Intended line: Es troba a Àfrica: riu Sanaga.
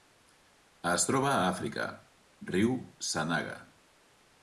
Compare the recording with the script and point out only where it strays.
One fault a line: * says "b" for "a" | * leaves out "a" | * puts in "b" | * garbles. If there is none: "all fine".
all fine